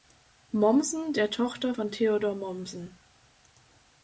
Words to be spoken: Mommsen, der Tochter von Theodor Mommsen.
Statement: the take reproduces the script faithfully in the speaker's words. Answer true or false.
true